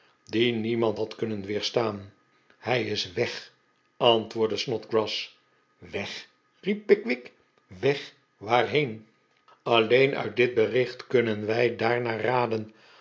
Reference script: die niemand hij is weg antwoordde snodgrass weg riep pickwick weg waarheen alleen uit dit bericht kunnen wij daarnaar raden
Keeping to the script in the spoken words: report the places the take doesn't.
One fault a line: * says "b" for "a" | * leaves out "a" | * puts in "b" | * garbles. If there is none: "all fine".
* puts in "had kunnen weerstaan"